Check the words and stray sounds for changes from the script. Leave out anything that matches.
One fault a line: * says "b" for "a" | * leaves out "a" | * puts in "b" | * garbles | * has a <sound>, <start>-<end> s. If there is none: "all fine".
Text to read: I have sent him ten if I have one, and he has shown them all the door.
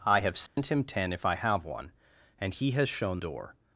* has a dropout, 0.5-0.6 s
* leaves out "them all the"